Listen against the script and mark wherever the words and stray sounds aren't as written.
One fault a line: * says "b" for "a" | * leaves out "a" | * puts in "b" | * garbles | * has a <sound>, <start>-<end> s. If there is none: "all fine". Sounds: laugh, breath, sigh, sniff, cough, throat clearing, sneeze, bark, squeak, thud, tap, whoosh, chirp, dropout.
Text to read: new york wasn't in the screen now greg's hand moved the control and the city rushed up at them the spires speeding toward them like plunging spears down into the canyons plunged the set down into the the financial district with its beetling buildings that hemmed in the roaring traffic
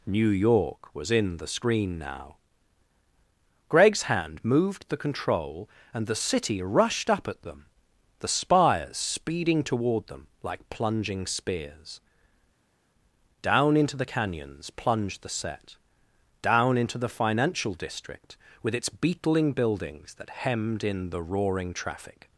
* says "was" for "wasn't"
* leaves out "the"